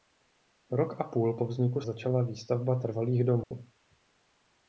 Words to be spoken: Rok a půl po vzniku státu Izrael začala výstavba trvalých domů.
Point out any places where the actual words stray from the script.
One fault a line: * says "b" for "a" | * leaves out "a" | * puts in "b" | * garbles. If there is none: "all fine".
* leaves out "státu Izrael"